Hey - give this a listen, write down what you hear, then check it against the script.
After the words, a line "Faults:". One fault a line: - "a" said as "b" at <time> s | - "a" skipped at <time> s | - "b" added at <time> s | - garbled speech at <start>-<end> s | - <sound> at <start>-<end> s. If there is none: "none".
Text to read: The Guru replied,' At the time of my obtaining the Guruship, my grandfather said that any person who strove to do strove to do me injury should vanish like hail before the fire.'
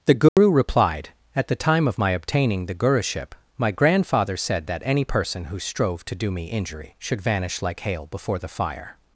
The Guru replied,' At the time of my obtaining the Guruship, my grandfather said that any person who strove to do me injury should vanish like hail before the fire.'
Faults:
- dropout at 0.3-0.4 s
- "strove to do" skipped at 6.3 s